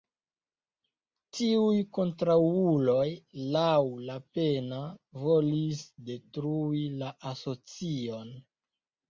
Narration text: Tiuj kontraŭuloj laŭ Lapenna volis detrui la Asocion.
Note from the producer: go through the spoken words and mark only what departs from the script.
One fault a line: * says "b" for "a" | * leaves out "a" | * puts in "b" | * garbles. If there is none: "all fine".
all fine